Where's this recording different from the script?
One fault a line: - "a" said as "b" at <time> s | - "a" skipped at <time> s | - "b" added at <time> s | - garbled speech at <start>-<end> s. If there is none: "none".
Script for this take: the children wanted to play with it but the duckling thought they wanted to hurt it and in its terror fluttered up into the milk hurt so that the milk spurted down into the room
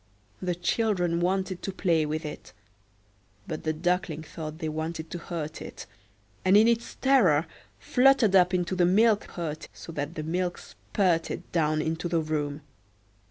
none